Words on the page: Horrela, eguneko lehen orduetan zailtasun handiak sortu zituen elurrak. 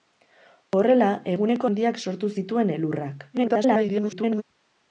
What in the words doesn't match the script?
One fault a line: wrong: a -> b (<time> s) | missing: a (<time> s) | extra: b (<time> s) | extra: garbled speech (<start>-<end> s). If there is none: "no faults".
missing: lehen orduetan zailtasun (1.7 s)
extra: garbled speech (3.3-4.4 s)